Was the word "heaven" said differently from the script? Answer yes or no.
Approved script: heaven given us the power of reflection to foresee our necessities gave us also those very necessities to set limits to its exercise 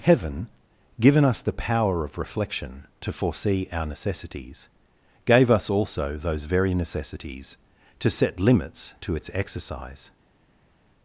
no